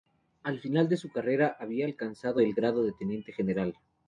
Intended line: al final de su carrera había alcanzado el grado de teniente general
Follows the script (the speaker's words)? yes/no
yes